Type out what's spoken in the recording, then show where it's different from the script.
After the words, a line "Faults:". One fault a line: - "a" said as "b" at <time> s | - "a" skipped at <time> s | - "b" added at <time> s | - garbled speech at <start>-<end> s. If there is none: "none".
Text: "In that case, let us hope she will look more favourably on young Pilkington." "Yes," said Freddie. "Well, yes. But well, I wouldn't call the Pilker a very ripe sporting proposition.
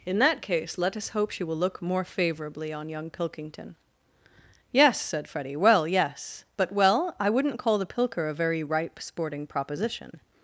"In that case, let us hope she will look more favourably on young Pilkington." "Yes," said Freddie. "Well, yes. But well, I wouldn't call the Pilker a very ripe sporting proposition.
Faults:
none